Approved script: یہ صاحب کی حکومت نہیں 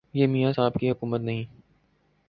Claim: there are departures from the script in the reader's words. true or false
true